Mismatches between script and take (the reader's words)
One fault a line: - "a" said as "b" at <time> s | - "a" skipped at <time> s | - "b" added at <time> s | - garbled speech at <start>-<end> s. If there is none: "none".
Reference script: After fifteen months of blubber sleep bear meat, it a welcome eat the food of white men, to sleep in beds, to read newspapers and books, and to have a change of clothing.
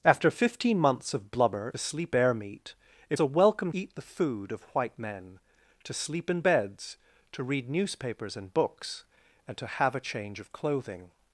none